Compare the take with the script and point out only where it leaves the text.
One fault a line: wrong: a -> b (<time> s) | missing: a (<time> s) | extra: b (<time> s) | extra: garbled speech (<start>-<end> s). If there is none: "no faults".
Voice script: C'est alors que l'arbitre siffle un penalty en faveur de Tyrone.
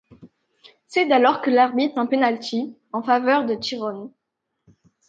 missing: siffle (2.0 s)